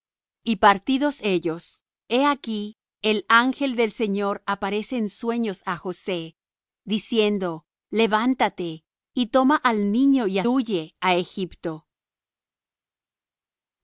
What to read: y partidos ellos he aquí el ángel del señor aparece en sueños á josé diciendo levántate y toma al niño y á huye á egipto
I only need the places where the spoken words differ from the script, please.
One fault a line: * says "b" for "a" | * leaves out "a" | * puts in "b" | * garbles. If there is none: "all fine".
all fine